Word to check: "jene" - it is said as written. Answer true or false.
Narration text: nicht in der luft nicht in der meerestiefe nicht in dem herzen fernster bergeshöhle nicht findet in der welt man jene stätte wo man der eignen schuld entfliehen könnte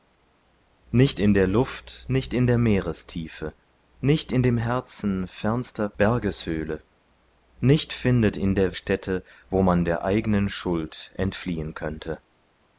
false